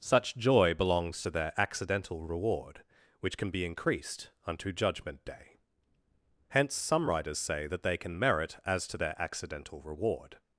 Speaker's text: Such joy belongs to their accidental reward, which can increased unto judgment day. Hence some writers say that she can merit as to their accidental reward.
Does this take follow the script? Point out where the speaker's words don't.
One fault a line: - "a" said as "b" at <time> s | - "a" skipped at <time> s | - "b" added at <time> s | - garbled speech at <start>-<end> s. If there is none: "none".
- "be" added at 3.5 s
- "she" said as "they" at 7.8 s